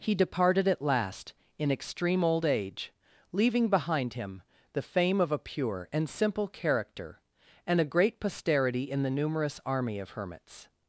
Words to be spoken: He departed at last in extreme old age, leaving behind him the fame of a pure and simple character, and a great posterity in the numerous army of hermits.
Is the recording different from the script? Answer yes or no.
no